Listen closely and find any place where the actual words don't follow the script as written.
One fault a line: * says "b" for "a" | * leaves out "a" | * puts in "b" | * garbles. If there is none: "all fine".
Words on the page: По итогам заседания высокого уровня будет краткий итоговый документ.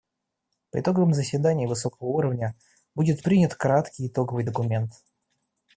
* puts in "принят"